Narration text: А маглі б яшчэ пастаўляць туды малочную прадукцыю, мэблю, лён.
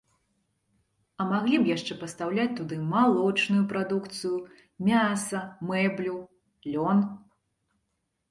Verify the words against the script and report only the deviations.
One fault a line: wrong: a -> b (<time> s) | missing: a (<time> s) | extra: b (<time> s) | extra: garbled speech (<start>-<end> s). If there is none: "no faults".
extra: мяса (4.9 s)